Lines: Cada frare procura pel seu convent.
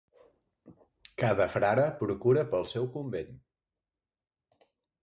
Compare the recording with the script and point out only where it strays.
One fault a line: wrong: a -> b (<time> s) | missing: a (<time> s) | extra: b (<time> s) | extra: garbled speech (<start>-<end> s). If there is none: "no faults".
no faults